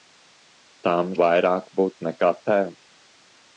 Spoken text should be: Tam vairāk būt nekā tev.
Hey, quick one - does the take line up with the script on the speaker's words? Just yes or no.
yes